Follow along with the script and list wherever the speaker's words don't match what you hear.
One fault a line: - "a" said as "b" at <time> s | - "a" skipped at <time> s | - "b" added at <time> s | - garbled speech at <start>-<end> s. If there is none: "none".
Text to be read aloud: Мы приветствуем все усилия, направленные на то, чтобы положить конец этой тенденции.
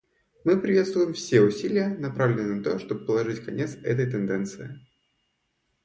none